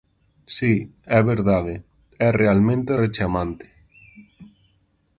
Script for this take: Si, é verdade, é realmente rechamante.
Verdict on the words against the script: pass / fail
pass